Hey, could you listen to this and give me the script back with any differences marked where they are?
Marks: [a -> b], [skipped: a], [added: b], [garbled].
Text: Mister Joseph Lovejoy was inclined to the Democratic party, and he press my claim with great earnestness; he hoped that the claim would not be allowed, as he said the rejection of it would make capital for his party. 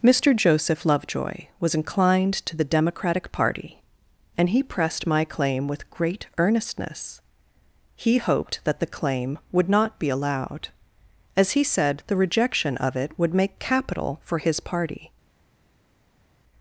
Mister Joseph Lovejoy was inclined to the Democratic party, and he [press -> pressed] my claim with great earnestness; he hoped that the claim would not be allowed, as he said the rejection of it would make capital for his party.